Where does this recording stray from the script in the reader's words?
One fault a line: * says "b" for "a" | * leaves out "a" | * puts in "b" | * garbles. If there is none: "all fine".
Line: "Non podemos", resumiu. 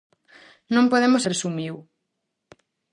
all fine